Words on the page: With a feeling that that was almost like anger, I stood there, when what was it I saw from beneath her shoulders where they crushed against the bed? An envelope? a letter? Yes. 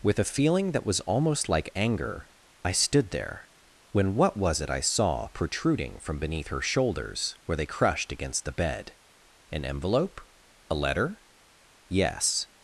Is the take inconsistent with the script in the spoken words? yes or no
yes